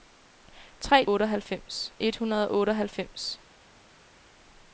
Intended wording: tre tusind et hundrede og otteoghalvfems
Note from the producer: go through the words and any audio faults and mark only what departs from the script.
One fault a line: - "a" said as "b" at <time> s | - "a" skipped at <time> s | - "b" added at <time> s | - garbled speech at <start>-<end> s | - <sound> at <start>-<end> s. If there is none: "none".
- "tusind" said as "otteoghalvfems" at 1.1 s